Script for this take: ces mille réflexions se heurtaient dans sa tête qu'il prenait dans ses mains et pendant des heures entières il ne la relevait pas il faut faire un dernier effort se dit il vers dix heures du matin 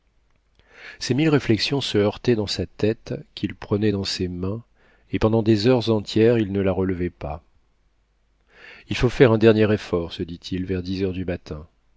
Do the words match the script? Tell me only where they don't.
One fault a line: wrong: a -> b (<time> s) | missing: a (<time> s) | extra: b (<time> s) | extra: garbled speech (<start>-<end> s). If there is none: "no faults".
no faults